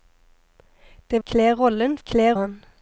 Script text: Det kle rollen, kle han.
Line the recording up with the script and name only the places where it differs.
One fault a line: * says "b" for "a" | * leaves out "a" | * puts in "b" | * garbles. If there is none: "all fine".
all fine